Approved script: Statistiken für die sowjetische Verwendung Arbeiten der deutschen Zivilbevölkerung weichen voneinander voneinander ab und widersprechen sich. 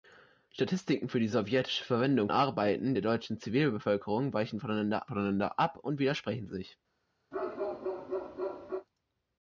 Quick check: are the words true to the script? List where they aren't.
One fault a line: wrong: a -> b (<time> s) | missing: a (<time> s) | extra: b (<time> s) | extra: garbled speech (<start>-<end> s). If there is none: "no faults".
no faults